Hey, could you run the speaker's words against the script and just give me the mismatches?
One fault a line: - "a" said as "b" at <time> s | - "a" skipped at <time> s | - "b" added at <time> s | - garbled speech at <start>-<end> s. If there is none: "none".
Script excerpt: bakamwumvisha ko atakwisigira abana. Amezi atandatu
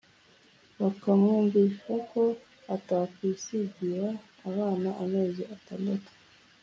none